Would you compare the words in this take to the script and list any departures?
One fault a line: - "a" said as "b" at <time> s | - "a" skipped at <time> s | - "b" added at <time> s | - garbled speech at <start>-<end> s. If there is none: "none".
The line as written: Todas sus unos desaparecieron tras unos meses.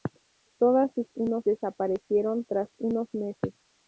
none